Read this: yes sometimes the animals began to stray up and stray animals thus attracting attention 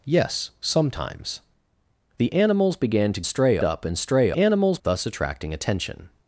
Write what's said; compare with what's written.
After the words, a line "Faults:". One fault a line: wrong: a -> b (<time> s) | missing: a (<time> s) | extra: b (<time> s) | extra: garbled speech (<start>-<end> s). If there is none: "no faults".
yes sometimes the animals began to stray up and stray animals thus attracting attention
Faults:
no faults